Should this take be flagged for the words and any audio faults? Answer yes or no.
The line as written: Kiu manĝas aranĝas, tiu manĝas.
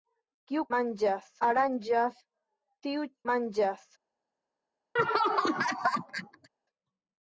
yes